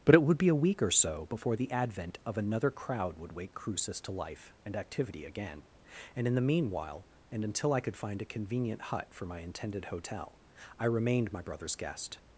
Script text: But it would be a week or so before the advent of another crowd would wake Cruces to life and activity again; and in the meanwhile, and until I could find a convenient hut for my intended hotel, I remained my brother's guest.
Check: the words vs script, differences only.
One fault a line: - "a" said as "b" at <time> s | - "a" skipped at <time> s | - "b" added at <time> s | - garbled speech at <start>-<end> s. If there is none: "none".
none